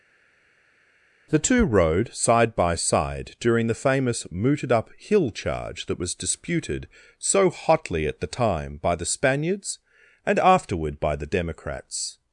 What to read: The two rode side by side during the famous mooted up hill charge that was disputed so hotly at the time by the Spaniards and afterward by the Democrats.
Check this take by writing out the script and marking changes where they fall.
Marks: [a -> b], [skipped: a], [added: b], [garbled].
The two rode side by side during the famous mooted up hill charge that was disputed so hotly at the time by the Spaniards and afterward by the Democrats.